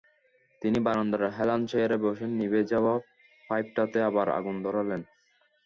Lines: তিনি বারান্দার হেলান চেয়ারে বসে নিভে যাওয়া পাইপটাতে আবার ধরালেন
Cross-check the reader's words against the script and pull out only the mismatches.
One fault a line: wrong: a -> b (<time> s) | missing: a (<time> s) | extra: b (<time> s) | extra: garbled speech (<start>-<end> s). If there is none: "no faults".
extra: আগুন (4.4 s)